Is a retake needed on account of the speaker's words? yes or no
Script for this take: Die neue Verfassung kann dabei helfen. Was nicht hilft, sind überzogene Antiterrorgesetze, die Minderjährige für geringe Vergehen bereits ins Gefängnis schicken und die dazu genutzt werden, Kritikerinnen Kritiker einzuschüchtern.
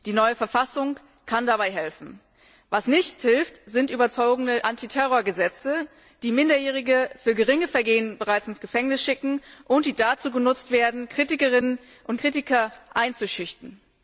yes